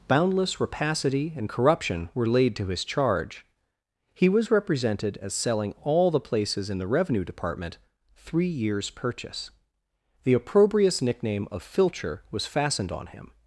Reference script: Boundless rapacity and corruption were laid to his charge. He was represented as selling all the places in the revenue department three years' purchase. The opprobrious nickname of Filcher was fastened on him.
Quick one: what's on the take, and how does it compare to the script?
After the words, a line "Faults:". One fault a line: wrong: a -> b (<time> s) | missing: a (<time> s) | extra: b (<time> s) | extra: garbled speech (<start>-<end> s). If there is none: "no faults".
Boundless rapacity and corruption were laid to his charge. He was represented as selling all the places in the revenue department three years' purchase. The opprobrious nickname of Filcher was fastened on him.
Faults:
no faults